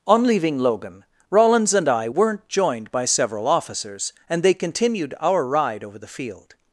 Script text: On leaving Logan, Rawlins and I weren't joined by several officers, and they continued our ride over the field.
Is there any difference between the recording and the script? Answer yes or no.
no